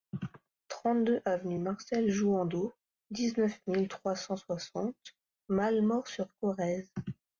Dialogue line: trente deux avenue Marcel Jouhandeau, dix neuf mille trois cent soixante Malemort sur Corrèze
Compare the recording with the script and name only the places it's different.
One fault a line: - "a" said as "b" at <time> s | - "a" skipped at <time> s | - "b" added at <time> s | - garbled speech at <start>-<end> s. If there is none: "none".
none